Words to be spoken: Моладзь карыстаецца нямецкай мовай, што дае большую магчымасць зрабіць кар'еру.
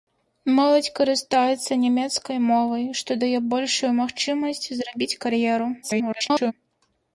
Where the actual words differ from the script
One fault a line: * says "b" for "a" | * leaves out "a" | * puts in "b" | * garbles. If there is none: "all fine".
* garbles